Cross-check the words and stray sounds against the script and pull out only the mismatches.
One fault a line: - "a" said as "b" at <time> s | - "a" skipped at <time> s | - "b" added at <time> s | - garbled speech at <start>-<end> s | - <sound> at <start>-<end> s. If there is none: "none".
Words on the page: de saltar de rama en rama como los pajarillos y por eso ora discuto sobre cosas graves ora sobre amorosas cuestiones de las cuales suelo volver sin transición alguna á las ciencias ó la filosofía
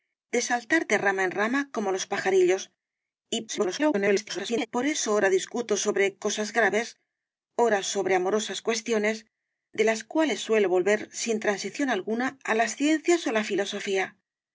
- garbled speech at 3.5-4.7 s